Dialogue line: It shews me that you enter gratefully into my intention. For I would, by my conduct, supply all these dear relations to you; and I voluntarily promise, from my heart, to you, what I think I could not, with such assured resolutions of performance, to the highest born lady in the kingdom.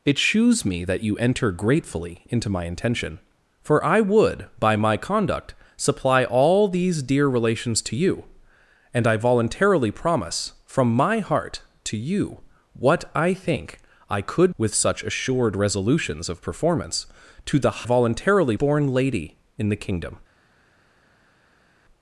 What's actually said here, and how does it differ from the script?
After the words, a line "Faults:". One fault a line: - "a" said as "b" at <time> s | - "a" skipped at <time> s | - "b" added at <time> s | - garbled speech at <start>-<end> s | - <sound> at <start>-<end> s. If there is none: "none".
It shews me that you enter gratefully into my intention. For I would, by my conduct, supply all these dear relations to you; and I voluntarily promise, from my heart, to you, what I think I could with such assured resolutions of performance, to the voluntarily born lady in the kingdom.
Faults:
- "not" skipped at 14.6 s
- "highest" said as "voluntarily" at 17.8 s